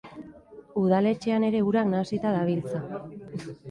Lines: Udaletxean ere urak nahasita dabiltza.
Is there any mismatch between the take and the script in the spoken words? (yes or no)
no